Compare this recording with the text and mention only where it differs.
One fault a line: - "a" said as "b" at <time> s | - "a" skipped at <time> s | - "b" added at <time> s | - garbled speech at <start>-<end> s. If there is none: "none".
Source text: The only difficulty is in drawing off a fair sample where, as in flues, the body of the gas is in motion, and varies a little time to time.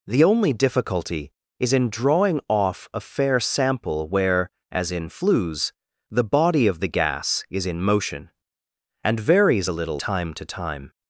none